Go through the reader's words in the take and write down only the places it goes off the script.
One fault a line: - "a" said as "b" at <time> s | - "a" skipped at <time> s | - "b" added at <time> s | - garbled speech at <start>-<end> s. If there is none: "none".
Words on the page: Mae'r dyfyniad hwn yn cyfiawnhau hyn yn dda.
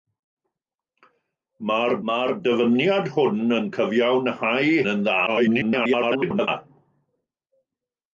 - "mae'r" added at 2.1 s
- "hyn" skipped at 4.7 s
- garbled speech at 5.3-6.5 s